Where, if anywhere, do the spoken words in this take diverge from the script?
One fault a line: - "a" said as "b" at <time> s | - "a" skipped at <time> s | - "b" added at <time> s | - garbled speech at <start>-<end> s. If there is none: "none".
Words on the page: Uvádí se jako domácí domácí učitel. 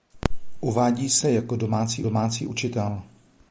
none